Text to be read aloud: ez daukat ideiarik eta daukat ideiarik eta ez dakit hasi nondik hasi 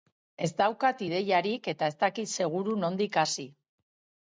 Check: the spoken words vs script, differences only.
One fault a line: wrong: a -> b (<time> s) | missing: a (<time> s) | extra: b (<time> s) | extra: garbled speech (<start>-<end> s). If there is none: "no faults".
missing: daukat ideiarik eta (1.9 s)
wrong: hasi -> seguru (2.4 s)